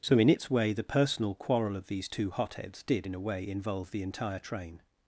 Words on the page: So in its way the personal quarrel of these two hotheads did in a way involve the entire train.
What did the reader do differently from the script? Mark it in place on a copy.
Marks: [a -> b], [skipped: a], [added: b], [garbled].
So in its way the personal quarrel of these two hotheads did in a way involve the entire train.